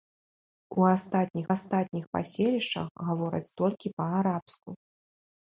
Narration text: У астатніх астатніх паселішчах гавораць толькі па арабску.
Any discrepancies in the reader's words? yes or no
no